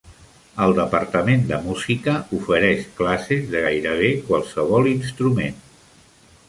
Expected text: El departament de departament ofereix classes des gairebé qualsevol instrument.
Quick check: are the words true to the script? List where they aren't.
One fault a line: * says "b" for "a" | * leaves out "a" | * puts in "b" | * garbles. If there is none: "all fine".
* says "música" for "departament"
* says "de" for "des"